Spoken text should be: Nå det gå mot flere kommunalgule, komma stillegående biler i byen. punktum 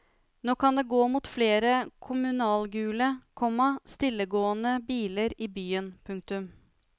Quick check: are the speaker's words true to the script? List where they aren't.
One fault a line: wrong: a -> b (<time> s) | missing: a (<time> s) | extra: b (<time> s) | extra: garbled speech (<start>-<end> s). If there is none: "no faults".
extra: kan (0.6 s)